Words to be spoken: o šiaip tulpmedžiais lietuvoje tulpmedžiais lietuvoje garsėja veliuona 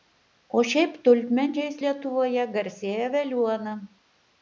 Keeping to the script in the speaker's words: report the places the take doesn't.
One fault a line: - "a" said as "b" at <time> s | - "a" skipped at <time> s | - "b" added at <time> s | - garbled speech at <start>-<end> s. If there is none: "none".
- "tulpmedžiais lietuvoje" skipped at 2.5 s